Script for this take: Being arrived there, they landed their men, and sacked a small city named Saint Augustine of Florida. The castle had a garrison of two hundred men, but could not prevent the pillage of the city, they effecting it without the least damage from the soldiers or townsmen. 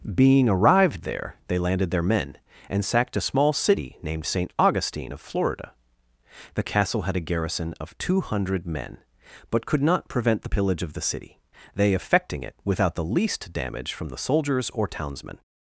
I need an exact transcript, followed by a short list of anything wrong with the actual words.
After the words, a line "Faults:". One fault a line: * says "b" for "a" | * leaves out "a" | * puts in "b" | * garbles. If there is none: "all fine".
Being arrived there, they landed their men, and sacked a small city named Saint Augustine of Florida. The castle had a garrison of two hundred men, but could not prevent the pillage of the city, they effecting it without the least damage from the soldiers or townsmen.
Faults:
all fine